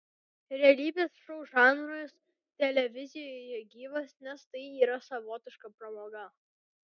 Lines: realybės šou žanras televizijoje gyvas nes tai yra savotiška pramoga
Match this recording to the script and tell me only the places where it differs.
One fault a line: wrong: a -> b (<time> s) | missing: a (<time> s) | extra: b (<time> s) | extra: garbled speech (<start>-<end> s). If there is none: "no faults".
no faults